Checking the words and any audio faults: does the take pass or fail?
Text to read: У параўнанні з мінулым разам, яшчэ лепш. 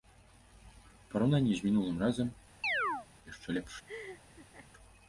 fail